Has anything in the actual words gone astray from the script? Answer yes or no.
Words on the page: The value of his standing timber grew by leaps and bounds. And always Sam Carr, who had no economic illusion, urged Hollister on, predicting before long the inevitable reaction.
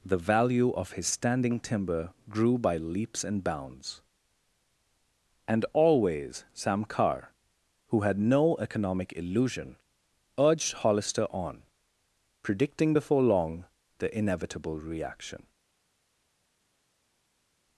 no